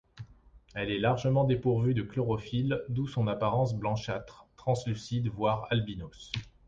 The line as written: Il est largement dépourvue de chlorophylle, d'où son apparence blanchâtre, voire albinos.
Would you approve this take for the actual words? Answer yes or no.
no